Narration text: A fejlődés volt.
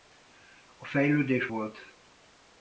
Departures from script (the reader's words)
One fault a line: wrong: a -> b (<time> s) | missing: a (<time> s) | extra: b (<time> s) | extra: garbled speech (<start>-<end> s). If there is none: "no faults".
no faults